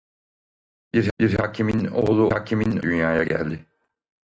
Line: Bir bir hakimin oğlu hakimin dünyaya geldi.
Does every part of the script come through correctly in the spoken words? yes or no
yes